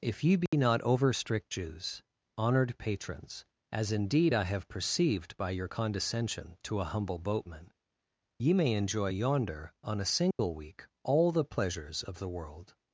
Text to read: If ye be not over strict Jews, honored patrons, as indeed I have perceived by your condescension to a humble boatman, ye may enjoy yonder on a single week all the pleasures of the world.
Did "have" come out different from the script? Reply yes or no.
no